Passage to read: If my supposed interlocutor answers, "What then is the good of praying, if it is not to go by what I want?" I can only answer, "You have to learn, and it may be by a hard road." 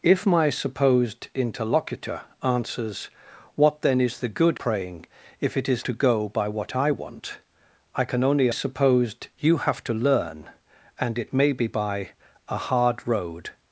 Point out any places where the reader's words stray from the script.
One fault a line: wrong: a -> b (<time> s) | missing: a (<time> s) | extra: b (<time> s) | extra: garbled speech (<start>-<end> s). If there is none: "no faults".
missing: of (4.6 s)
missing: not (5.8 s)
wrong: answer -> supposed (8.5 s)